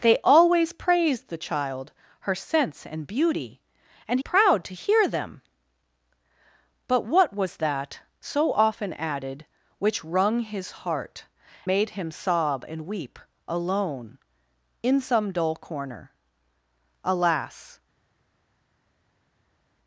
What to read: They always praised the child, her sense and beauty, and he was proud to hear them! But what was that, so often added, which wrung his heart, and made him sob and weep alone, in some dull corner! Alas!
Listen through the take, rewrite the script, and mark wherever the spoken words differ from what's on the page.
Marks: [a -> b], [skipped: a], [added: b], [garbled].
They always praised the child, her sense and beauty, and [skipped: he was] proud to hear them! But what was that, so often added, which wrung his heart, [skipped: and] made him sob and weep alone, in some dull corner! Alas!